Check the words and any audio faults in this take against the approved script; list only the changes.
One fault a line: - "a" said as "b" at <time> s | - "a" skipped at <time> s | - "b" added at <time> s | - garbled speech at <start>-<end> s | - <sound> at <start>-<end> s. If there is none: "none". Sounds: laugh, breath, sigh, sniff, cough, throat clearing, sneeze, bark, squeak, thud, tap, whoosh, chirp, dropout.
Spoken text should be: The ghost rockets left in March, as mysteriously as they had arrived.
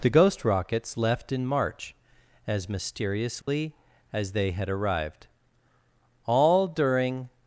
- dropout at 3.4-3.5 s
- "All during" added at 6.3 s